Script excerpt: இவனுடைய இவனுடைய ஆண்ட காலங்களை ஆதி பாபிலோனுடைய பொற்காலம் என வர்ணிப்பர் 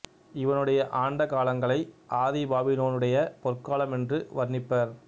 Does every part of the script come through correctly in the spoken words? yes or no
no